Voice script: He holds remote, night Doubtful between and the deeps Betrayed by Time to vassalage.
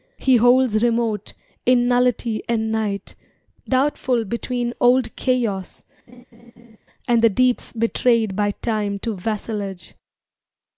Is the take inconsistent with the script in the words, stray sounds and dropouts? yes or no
yes